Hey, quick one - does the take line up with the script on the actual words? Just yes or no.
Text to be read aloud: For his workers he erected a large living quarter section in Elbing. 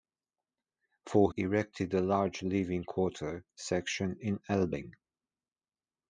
no